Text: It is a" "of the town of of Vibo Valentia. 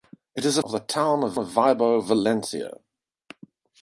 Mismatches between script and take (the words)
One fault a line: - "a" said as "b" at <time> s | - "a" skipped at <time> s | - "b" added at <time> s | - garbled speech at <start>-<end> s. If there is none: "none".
none